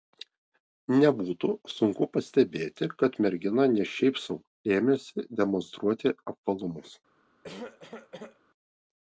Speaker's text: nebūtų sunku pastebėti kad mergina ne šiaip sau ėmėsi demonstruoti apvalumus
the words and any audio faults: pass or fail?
fail